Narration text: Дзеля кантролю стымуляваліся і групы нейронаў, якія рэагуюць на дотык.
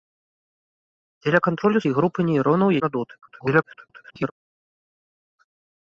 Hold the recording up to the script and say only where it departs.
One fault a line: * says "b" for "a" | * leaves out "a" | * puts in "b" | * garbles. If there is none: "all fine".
* leaves out "стымуляваліся"
* leaves out "якія рэагуюць"
* garbles